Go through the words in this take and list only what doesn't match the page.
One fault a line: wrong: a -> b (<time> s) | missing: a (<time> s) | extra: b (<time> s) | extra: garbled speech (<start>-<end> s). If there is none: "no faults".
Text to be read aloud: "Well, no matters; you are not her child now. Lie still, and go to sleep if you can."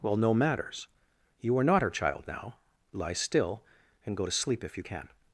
no faults